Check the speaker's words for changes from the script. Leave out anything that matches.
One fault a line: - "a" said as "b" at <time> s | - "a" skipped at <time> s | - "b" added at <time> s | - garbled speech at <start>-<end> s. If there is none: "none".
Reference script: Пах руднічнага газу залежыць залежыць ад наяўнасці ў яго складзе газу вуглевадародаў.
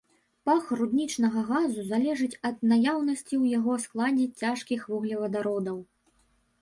- "залежыць" skipped at 2.4 s
- "газу" said as "цяжкіх" at 4.4 s